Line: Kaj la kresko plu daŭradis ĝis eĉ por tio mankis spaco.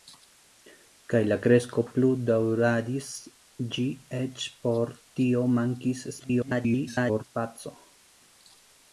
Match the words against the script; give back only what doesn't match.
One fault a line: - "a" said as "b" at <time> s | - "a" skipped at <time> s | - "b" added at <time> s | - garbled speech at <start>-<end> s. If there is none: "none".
- garbled speech at 6.2-7.2 s